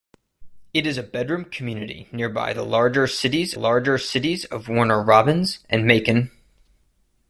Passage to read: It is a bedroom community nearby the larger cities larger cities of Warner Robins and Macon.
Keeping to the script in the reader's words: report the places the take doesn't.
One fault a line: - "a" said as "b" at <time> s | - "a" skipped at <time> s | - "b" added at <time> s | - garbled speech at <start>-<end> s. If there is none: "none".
none